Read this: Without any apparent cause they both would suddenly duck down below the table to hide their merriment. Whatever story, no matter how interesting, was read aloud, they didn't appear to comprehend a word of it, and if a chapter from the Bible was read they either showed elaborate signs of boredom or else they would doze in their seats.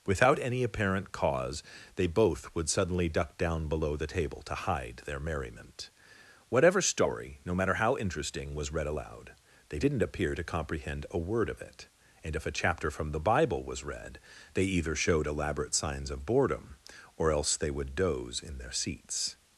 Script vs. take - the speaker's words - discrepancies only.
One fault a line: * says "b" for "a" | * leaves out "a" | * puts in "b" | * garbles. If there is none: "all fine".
all fine